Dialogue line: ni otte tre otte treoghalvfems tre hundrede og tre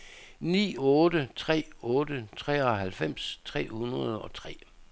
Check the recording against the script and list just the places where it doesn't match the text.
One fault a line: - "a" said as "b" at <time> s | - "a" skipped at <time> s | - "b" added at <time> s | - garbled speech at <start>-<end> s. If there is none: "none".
none